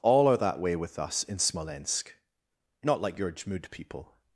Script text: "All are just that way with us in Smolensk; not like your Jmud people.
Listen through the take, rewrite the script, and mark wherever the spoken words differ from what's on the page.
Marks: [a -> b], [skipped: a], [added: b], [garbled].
"All are [skipped: just] that way with us in Smolensk; not like your Jmud people.